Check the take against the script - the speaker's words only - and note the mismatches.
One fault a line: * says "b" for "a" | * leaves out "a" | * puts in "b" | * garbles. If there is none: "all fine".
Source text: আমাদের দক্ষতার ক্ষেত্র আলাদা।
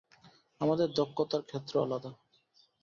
all fine